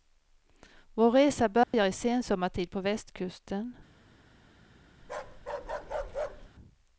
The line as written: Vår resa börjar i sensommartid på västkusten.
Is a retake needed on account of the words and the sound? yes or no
yes